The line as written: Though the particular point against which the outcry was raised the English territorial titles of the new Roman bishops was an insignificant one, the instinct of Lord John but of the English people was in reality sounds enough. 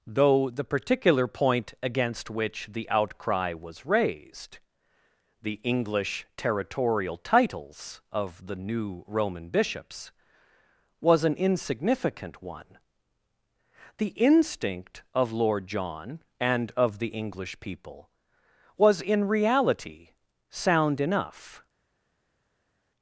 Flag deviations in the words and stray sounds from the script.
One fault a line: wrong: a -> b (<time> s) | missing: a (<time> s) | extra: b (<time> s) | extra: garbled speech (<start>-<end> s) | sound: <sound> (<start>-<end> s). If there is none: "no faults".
wrong: but -> and (16.4 s)
wrong: sounds -> sound (20.5 s)